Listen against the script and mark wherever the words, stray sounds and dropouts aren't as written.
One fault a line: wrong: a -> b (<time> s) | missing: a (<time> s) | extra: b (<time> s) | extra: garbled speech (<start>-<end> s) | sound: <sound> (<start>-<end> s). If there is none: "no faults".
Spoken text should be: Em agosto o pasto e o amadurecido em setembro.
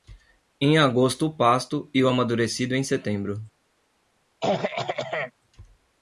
sound: throat clearing (4.4-5.3 s)